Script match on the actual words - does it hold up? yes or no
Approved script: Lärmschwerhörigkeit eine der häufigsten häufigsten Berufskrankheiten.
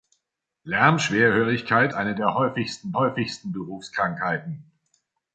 yes